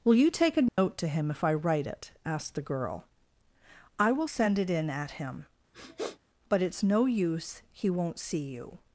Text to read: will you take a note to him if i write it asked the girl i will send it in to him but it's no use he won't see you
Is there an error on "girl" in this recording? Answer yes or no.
no